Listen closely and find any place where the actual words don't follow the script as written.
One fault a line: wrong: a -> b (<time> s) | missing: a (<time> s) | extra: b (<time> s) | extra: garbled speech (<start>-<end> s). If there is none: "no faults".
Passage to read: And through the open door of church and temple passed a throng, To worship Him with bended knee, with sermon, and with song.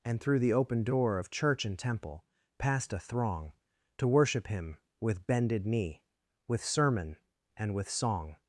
no faults